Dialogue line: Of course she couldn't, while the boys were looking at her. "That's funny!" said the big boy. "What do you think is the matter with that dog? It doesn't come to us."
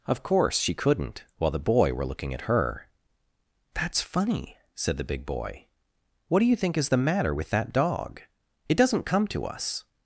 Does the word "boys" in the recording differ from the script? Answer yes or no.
yes